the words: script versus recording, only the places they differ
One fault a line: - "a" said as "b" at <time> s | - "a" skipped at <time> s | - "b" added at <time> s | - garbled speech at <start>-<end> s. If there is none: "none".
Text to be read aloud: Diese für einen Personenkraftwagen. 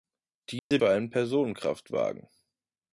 none